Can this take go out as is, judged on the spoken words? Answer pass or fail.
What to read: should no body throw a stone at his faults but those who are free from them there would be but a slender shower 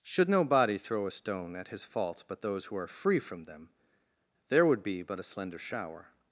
pass